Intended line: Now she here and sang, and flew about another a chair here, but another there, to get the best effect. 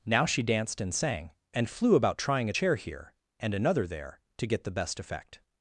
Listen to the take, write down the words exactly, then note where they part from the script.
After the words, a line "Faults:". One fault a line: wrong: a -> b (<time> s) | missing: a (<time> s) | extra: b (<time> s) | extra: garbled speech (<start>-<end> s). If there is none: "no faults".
Now she danced and sang, and flew about trying a chair here, and another there, to get the best effect.
Faults:
wrong: here -> danced (0.4 s)
wrong: another -> trying (2.2 s)
wrong: but -> and (3.4 s)